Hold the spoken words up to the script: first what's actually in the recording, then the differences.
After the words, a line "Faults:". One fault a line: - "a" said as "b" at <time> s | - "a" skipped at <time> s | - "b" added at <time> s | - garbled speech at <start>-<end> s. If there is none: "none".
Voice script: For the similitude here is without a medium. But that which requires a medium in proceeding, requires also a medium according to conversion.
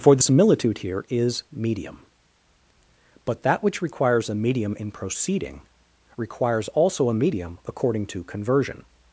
For the similitude here is medium. But that which requires a medium in proceeding, requires also a medium according to conversion.
Faults:
- "without a" skipped at 1.4 s